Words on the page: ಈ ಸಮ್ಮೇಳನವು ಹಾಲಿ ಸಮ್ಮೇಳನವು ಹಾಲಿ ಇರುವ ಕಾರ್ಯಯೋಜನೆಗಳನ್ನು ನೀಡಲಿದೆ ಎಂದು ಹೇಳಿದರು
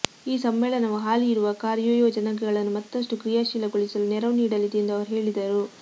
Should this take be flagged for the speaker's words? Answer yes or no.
yes